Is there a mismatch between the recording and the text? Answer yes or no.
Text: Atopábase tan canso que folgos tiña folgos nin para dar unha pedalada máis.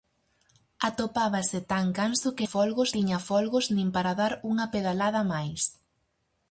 no